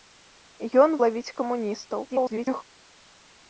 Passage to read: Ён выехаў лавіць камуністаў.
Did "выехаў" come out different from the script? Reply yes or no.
yes